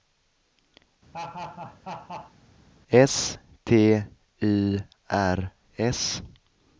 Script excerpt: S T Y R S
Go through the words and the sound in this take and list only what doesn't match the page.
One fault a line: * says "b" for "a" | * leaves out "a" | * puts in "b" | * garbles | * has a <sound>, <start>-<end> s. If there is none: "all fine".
* has a laugh, 1.1-2.3 s